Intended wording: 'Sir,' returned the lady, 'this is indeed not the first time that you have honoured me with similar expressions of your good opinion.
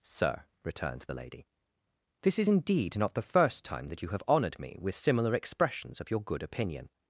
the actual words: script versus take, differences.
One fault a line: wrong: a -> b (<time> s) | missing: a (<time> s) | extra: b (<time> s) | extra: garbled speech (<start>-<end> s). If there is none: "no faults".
no faults